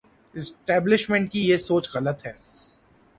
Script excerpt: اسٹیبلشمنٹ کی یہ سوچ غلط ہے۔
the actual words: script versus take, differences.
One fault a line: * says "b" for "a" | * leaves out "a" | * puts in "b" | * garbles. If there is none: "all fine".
all fine